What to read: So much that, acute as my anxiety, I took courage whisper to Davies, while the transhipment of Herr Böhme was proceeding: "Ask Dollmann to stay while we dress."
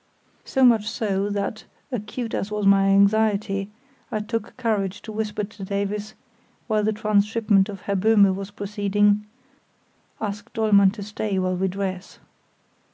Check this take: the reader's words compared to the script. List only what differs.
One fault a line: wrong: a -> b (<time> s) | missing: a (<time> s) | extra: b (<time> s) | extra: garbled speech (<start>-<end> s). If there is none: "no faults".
extra: so (0.9 s)
extra: was (2.5 s)
extra: to (5.0 s)